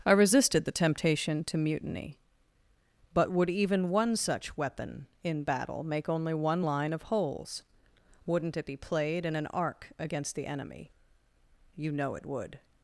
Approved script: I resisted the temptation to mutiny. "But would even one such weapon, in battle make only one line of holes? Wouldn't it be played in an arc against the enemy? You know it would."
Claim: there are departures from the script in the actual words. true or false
false